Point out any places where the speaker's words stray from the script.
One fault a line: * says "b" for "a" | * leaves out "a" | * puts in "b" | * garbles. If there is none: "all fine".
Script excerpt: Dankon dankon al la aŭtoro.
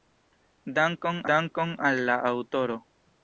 all fine